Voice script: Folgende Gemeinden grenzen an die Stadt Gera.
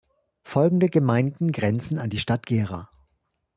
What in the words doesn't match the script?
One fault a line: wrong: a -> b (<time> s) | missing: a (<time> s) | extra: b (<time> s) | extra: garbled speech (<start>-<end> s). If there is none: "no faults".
no faults